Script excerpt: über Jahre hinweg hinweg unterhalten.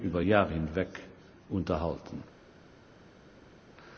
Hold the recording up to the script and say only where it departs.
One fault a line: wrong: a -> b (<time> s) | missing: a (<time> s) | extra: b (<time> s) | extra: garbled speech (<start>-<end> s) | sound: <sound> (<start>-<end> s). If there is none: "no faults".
missing: hinweg (0.9 s)